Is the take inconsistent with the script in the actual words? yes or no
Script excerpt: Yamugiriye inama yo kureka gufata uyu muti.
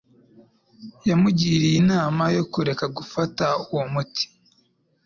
yes